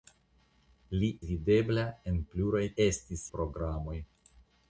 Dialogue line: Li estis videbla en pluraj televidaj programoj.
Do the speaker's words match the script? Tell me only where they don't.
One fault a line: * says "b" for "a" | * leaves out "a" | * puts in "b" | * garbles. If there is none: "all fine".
* leaves out "estis"
* says "estis" for "televidaj"